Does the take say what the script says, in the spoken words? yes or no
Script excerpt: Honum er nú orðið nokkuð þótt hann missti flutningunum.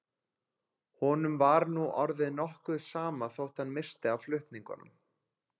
no